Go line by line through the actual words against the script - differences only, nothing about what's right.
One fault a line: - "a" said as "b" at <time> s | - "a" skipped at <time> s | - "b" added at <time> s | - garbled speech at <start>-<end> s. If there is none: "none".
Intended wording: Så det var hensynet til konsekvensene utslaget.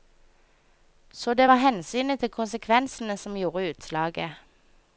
- "som gjorde" added at 3.2 s